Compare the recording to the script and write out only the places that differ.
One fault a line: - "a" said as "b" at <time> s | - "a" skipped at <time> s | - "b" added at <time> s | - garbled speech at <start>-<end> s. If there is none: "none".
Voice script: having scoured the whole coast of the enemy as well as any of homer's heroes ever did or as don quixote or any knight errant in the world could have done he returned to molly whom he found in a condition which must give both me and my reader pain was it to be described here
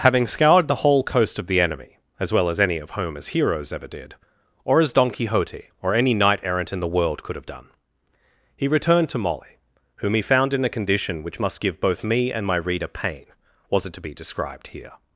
none